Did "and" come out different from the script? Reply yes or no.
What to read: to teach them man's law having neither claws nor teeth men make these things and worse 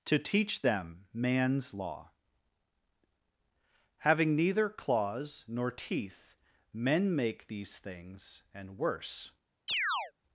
no